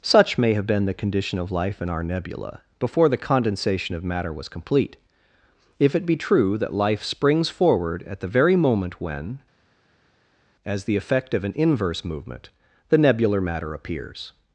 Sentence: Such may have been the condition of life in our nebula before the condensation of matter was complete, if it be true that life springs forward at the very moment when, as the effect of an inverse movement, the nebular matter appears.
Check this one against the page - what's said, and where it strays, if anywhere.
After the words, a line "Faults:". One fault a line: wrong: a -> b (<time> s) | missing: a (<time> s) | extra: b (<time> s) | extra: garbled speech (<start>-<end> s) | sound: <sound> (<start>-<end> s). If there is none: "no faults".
Such may have been the condition of life in our nebula before the condensation of matter was complete, if it be true that life springs forward at the very moment when, as the effect of an inverse movement, the nebular matter appears.
Faults:
no faults